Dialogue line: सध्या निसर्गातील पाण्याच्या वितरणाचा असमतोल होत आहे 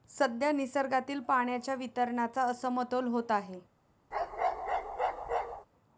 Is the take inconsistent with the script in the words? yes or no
no